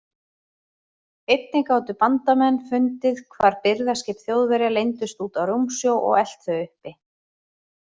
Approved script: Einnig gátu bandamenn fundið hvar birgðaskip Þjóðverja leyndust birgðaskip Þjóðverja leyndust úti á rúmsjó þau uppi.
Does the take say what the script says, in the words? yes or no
no